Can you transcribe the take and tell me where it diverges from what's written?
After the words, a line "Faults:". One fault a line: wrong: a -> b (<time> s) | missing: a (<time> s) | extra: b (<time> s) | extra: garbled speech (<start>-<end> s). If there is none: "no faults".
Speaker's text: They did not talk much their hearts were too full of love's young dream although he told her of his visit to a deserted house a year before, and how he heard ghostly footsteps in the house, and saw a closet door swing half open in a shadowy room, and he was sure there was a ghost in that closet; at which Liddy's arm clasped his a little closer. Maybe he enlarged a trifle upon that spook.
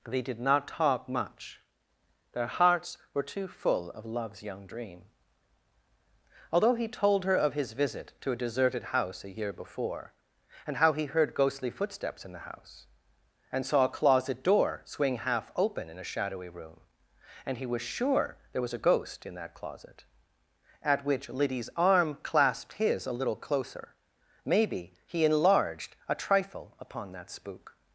They did not talk much their hearts were too full of love's young dream although he told her of his visit to a deserted house a year before, and how he heard ghostly footsteps in the house, and saw a closet door swing half open in a shadowy room, and he was sure there was a ghost in that closet; at which Liddy's arm clasped his a little closer. Maybe he enlarged a trifle upon that spook.
Faults:
no faults